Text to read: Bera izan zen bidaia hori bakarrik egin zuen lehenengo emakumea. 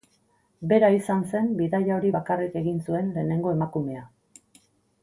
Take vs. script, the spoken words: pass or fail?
pass